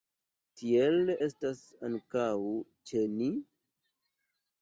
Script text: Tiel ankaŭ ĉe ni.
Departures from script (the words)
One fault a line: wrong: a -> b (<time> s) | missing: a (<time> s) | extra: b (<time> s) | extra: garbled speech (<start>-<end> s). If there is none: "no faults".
extra: estas (1.2 s)